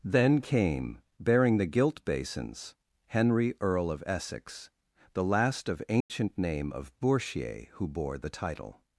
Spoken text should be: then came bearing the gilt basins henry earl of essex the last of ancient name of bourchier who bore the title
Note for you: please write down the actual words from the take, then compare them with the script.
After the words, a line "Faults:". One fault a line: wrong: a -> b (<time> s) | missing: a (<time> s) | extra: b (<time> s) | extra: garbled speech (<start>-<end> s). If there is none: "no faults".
then came bearing the gilt basins henry earl of essex the last of ancient name of bourchier who bore the title
Faults:
no faults